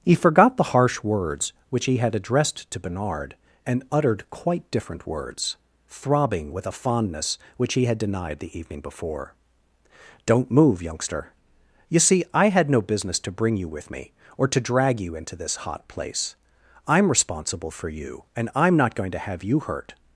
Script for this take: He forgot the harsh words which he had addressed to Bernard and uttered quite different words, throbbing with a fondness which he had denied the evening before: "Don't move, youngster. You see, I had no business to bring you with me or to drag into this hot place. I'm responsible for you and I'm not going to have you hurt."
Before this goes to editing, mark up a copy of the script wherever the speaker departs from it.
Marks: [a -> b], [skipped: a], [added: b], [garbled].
He forgot the harsh words which he had addressed to Bernard and uttered quite different words, throbbing with a fondness which he had denied the evening before: "Don't move, youngster. You see, I had no business to bring you with me or to drag [added: you] into this hot place. I'm responsible for you and I'm not going to have you hurt."